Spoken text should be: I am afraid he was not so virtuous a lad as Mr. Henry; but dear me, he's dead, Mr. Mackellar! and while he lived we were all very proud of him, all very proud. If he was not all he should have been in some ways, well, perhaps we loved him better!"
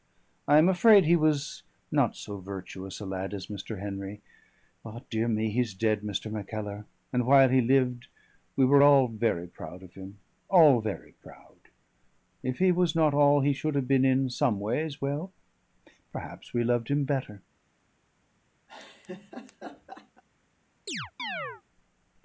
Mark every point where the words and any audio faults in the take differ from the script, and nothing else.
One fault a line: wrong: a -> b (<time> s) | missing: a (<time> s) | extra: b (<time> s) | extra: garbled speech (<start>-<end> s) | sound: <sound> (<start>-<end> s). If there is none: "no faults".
sound: laugh (18.7-20.2 s)
sound: chirp (20.9-21.6 s)